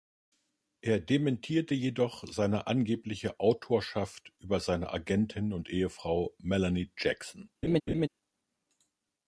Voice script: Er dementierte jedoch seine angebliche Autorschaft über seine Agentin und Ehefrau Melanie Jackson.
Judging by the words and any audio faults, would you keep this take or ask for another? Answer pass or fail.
fail